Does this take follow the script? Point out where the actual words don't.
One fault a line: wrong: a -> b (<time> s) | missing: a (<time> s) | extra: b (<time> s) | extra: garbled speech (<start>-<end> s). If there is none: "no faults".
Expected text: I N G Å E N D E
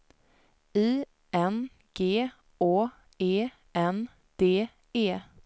no faults